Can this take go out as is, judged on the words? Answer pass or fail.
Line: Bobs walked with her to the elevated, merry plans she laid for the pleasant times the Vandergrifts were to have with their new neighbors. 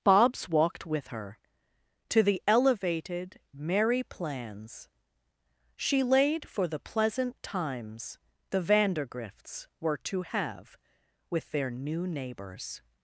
pass